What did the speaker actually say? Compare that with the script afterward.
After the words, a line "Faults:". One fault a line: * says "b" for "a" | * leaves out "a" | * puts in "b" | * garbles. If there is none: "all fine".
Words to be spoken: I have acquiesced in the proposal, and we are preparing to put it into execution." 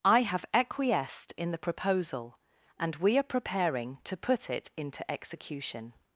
I have acquiesced in the proposal, and we are preparing to put it into execution."
Faults:
all fine